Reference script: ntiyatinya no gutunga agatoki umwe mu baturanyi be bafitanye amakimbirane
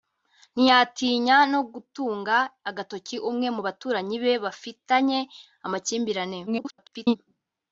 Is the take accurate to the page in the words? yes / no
no